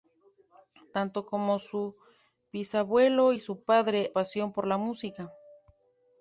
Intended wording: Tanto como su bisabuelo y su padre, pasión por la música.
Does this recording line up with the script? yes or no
yes